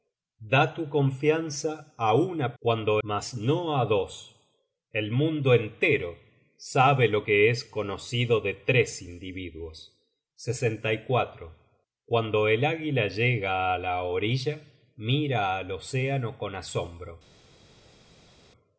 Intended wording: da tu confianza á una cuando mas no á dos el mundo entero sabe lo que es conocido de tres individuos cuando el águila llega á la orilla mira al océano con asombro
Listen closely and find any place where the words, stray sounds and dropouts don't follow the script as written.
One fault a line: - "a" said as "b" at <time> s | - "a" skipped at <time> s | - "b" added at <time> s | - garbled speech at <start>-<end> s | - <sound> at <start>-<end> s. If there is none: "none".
none